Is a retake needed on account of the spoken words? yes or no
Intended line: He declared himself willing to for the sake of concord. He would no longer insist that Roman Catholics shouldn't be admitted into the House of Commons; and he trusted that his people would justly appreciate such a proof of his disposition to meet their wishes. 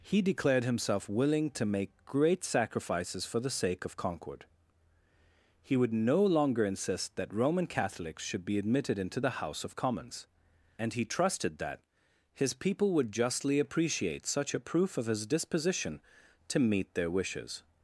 yes